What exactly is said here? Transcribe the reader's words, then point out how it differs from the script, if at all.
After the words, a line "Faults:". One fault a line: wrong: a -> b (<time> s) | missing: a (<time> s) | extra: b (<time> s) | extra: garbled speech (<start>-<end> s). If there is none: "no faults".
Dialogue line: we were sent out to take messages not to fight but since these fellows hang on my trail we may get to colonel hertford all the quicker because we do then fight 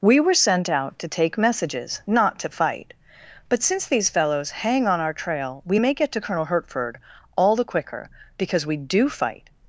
we were sent out to take messages not to fight but since these fellows hang on our trail we may get to colonel hertford all the quicker because we do fight
Faults:
wrong: my -> our (5.0 s)
missing: then (9.1 s)